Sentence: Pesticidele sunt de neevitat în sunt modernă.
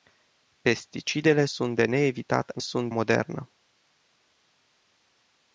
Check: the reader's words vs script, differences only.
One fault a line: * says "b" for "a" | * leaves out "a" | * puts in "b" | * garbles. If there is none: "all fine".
all fine